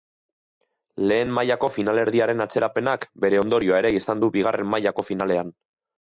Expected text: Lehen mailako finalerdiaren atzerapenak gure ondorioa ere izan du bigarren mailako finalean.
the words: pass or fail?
fail